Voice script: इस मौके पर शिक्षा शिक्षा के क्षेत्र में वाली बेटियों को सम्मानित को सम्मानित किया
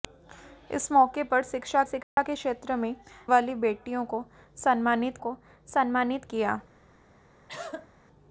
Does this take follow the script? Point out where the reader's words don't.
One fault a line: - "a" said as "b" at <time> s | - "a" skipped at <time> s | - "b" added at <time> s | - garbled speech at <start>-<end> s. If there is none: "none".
none